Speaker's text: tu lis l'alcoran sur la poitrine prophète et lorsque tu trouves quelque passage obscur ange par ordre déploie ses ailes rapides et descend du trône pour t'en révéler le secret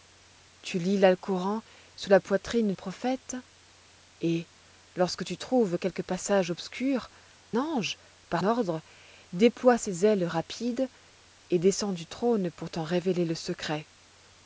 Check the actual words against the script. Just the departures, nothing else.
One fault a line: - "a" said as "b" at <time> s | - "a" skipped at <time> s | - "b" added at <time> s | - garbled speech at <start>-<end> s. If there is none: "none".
none